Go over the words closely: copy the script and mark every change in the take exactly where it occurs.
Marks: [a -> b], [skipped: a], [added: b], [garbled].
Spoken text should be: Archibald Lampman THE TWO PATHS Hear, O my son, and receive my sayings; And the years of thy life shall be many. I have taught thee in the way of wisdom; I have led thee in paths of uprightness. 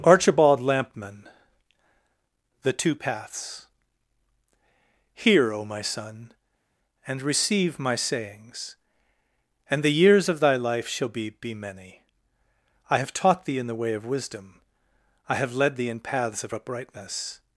Archibald Lampman THE TWO PATHS Hear, O my son, and receive my sayings; And the years of thy life shall be [added: be] many. I have taught thee in the way of wisdom; I have led thee in paths of uprightness.